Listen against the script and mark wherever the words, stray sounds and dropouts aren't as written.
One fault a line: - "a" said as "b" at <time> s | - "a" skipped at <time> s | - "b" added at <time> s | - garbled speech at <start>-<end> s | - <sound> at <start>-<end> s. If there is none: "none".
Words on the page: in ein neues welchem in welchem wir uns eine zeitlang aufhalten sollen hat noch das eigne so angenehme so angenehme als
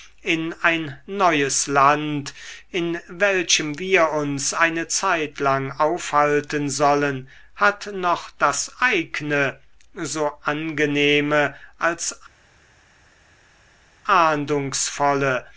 - "welchem" said as "land" at 1.7 s
- "so angenehme" skipped at 11.5 s